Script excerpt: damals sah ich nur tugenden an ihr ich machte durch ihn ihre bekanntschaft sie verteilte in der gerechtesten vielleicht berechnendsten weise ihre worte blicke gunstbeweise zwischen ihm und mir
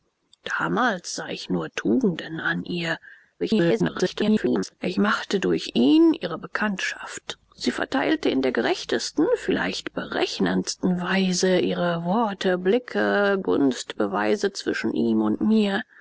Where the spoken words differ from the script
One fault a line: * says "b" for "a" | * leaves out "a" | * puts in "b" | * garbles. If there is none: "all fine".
* garbles